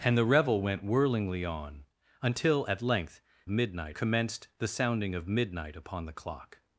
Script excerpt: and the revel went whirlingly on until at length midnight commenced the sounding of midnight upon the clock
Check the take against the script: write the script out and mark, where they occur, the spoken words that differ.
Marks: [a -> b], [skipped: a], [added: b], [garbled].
and the revel went whirlingly on until at length midnight commenced the sounding of midnight upon the clock